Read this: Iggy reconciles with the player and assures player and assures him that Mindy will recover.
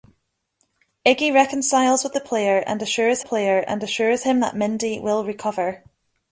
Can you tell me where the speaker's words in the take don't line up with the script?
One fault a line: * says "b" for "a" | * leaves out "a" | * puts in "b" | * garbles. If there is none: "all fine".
all fine